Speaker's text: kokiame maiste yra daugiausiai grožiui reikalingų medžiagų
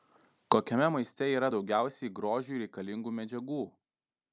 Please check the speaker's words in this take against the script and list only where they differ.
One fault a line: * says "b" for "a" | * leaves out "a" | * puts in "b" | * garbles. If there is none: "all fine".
all fine